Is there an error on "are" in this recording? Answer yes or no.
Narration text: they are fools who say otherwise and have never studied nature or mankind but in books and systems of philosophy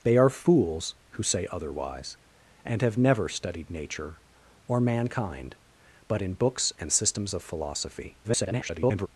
no